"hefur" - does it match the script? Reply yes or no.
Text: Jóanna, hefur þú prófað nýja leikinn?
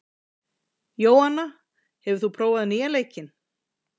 yes